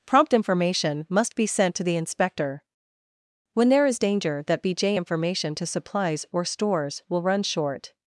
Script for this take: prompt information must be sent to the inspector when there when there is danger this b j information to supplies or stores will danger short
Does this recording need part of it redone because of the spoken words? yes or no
yes